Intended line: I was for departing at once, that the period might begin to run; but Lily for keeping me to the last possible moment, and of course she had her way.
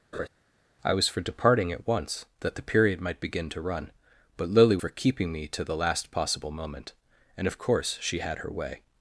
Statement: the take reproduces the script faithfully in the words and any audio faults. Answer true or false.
false